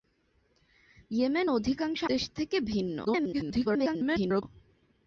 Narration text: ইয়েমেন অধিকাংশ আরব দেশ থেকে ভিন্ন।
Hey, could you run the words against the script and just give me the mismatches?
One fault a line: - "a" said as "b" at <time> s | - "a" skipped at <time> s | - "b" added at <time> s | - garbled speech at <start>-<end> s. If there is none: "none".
- "আরব" skipped at 2.0 s
- garbled speech at 3.0-4.4 s